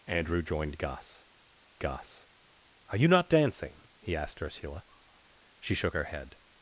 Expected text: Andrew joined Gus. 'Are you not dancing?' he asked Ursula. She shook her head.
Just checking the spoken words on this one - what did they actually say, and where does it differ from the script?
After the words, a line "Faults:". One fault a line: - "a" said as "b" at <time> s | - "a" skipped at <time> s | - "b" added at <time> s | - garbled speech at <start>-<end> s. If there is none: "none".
Andrew joined Gus Gus. 'Are you not dancing?' he asked Ursula. She shook her head.
Faults:
- "Gus" added at 1.8 s